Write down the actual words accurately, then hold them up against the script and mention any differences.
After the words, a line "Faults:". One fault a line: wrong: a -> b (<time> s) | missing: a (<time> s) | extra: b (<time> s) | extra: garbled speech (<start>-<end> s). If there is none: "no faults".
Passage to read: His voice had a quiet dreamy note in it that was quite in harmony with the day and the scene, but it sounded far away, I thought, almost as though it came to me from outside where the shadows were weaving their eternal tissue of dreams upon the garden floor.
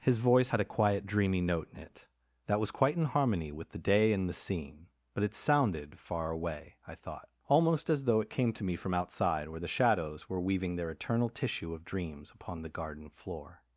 His voice had a quiet dreamy note in it that was quite in harmony with the day and the scene, but it sounded far away, I thought, almost as though it came to me from outside where the shadows were weaving their eternal tissue of dreams upon the garden floor.
Faults:
no faults